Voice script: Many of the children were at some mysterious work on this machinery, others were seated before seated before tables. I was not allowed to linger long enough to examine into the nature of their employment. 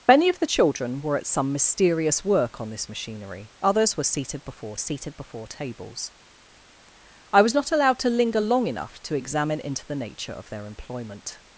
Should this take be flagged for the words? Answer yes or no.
no